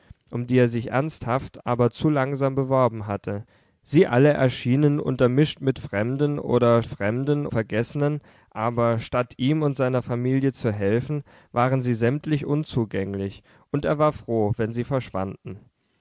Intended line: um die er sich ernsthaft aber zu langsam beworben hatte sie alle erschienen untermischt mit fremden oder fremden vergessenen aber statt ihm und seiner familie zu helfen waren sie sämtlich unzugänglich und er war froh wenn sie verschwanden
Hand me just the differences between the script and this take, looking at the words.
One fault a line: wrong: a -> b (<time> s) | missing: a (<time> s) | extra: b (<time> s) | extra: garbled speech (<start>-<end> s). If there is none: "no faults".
no faults